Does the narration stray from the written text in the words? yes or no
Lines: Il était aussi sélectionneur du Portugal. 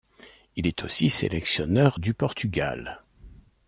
yes